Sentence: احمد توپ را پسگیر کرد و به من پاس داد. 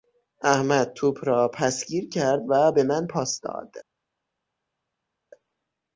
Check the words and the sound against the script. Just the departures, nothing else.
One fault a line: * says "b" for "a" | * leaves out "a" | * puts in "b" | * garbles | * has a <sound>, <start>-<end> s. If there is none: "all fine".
all fine